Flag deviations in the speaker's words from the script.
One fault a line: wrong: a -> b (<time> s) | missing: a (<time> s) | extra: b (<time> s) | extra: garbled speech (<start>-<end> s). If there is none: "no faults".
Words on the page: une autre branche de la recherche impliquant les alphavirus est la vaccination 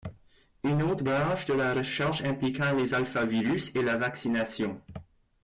no faults